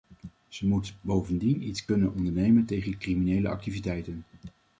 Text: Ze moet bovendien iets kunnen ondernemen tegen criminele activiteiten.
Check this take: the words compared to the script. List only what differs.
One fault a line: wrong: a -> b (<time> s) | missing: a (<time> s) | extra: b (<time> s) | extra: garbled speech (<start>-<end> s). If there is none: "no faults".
no faults